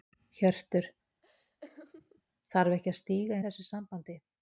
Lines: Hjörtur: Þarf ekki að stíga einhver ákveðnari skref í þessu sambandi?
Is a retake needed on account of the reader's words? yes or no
yes